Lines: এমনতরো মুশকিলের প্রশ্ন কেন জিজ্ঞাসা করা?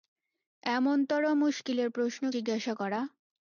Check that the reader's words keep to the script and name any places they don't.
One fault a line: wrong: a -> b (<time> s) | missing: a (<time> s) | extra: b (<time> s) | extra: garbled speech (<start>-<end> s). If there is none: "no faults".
missing: কেন (2.2 s)